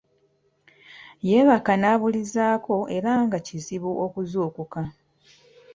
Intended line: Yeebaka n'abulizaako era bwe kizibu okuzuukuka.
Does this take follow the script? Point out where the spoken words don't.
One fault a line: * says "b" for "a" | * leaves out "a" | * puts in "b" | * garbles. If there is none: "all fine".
* says "nga" for "bwe"